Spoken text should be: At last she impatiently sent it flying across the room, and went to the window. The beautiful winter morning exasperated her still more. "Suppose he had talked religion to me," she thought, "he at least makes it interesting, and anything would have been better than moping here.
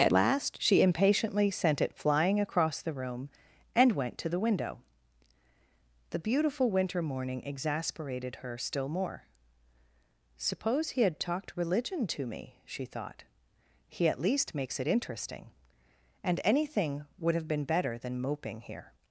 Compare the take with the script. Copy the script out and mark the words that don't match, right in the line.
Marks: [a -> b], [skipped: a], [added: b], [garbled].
At last she impatiently sent it flying across the room, and went to the window. The beautiful winter morning exasperated her still more. "Suppose he had talked religion to me," she thought, "he at least makes it interesting, and anything would have been better than moping here.